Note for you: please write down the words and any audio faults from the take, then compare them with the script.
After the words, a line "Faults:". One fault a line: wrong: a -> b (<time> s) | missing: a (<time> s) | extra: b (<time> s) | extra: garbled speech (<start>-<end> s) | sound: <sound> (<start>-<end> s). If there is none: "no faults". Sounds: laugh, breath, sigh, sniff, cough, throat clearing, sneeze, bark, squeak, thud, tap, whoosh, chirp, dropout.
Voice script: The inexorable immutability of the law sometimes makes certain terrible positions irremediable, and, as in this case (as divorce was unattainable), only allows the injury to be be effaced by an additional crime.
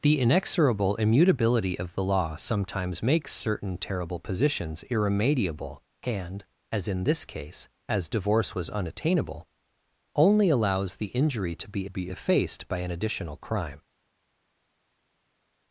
The inexorable immutability of the law sometimes makes certain terrible positions irremediable, and, as in this case (as divorce was unattainable), only allows the injury to be be effaced by an additional crime.
Faults:
no faults